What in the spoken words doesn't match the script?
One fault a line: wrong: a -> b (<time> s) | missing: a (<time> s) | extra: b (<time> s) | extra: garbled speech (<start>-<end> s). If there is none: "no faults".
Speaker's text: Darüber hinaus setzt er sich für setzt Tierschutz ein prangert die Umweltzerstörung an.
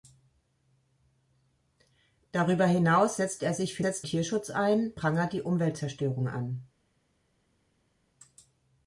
no faults